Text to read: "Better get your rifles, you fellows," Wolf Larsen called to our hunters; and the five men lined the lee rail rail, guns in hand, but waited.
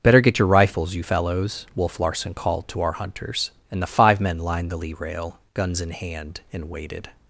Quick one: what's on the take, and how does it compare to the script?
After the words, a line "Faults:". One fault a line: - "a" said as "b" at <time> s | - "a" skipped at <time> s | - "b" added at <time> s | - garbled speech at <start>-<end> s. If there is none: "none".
"Better get your rifles, you fellows," Wolf Larsen called to our hunters; and the five men lined the lee rail, guns in hand, and waited.
Faults:
- "rail" skipped at 5.4 s
- "but" said as "and" at 6.5 s